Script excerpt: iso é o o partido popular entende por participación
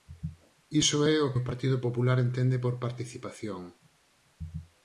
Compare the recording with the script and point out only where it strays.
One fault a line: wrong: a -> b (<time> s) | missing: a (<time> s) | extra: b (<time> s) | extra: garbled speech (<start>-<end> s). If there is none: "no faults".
no faults